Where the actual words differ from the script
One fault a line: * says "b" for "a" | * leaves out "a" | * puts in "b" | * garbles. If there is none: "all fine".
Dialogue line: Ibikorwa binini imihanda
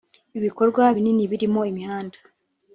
* puts in "birimo"